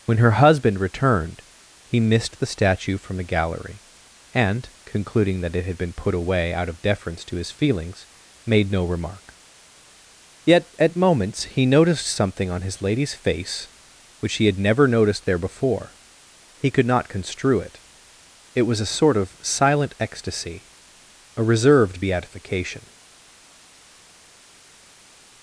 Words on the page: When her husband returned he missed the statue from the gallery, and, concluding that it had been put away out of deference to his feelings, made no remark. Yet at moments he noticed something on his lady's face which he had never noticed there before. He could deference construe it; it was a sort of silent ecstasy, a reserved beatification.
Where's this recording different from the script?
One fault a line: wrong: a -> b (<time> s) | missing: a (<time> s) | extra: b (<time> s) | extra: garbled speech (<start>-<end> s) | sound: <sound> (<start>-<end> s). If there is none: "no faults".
wrong: deference -> not (16.9 s)